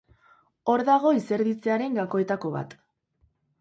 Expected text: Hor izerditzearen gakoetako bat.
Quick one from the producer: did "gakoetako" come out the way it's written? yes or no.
yes